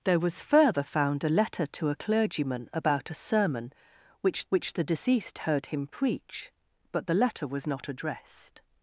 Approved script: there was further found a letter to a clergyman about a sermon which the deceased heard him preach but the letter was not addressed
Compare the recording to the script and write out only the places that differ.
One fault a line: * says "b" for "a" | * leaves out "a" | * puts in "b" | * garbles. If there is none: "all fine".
* puts in "which"